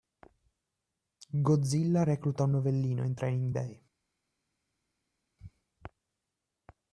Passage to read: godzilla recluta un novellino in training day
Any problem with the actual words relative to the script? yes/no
no